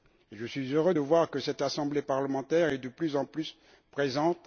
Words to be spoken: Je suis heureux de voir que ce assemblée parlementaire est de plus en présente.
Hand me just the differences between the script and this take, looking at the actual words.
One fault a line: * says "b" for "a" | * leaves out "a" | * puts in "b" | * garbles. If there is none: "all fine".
* says "cette" for "ce"
* puts in "plus"